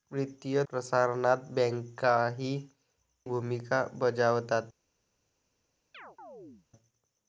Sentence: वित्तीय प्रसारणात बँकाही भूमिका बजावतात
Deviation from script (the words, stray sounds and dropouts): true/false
true